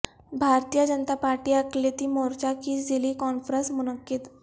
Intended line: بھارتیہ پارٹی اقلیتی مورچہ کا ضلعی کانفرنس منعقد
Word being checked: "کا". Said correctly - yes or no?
no